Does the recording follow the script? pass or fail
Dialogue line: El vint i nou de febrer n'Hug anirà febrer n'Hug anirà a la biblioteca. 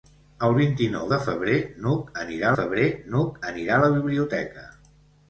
pass